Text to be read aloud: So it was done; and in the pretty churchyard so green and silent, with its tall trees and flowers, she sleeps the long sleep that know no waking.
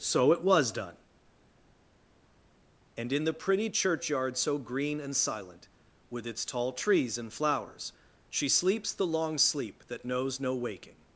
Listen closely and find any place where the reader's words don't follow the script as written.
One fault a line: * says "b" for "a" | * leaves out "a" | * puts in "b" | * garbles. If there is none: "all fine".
* says "knows" for "know"